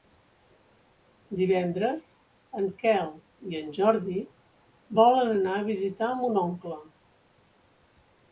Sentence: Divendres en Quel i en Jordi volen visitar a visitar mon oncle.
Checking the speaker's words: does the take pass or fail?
fail